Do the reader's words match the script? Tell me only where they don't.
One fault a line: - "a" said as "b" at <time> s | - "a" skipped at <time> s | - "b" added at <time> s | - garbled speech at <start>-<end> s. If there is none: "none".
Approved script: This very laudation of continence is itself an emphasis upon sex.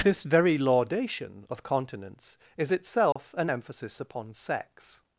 none